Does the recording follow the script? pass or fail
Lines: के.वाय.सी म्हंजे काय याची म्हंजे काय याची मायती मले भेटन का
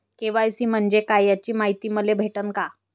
fail